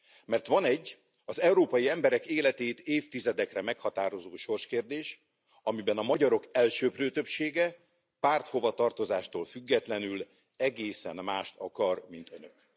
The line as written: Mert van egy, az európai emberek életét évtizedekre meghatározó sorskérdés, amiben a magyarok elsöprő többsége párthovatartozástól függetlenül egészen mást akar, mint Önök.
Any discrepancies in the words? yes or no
no